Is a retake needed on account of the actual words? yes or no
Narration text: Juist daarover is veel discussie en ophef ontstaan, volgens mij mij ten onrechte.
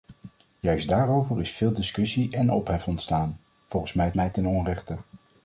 no